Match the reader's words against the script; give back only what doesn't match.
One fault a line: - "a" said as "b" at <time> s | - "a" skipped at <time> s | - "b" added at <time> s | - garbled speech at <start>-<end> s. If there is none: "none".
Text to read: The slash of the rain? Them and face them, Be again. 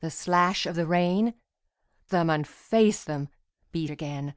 none